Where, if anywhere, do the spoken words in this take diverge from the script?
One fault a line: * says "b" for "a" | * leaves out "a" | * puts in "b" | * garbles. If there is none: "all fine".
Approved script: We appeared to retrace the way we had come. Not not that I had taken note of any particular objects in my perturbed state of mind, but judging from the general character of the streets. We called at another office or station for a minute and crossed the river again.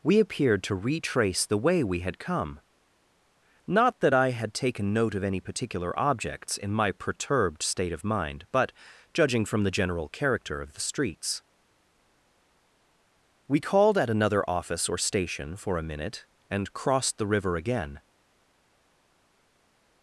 * leaves out "not"